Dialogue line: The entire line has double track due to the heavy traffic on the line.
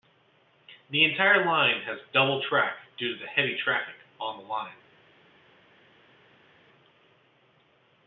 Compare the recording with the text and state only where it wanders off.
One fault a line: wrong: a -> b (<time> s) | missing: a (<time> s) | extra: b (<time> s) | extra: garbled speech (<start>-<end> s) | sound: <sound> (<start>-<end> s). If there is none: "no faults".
no faults